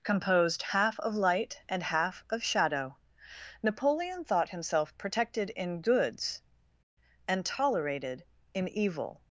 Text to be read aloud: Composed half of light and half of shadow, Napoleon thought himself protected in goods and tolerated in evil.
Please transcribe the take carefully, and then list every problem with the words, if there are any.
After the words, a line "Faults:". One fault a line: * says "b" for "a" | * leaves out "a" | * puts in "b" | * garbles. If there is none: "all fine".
Composed half of light and half of shadow, Napoleon thought himself protected in goods and tolerated in evil.
Faults:
all fine